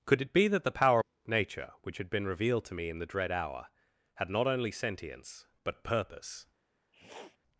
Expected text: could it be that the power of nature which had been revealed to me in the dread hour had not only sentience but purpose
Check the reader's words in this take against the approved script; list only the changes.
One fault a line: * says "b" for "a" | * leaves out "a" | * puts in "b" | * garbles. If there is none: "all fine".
all fine